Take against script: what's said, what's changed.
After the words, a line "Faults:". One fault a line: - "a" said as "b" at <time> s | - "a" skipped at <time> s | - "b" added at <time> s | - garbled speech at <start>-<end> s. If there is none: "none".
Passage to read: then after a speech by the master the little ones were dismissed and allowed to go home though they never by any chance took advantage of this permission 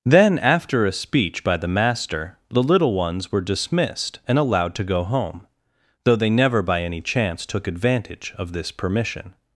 then after a speech by the master the little ones were dismissed and allowed to go home though they never by any chance took advantage of this permission
Faults:
none